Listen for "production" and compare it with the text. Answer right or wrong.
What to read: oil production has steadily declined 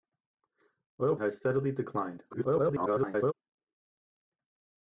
wrong